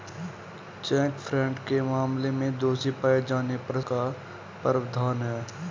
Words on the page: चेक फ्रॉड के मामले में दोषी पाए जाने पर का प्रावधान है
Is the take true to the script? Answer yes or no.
yes